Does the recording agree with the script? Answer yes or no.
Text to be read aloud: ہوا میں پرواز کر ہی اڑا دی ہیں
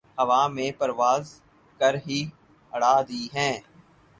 yes